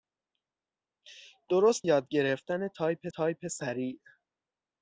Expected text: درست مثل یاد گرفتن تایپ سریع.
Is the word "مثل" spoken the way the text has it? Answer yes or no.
no